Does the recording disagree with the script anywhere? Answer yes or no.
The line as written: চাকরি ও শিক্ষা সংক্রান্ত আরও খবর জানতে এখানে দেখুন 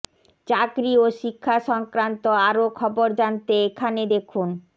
no